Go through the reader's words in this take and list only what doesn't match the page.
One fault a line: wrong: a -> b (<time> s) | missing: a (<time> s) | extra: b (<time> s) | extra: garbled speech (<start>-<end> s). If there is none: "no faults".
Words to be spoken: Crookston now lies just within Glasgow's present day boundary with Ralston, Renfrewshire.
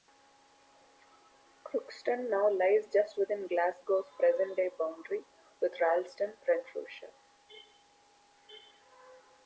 no faults